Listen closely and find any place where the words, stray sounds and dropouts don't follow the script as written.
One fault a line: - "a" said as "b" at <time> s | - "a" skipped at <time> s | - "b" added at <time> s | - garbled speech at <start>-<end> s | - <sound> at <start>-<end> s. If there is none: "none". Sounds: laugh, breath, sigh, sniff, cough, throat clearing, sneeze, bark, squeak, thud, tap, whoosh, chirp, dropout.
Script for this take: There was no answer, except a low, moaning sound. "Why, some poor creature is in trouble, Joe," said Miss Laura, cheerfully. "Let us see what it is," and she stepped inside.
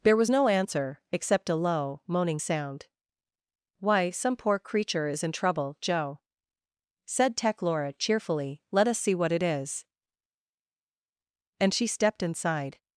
- "Miss" said as "Tech" at 7.3 s